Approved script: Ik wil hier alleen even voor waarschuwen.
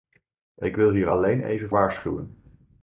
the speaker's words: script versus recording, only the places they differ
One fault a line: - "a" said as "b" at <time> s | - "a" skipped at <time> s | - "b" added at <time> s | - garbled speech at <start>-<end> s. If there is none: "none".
- "voor" skipped at 1.7 s